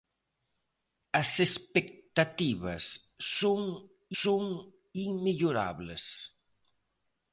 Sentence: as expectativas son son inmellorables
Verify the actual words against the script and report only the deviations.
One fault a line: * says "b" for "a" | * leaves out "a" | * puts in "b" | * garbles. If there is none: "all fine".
all fine